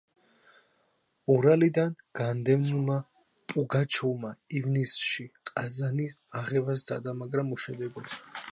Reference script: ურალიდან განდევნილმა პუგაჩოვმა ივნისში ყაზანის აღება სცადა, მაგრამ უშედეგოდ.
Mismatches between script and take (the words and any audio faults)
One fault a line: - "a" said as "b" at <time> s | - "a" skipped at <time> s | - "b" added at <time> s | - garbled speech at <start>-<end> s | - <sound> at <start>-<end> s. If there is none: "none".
none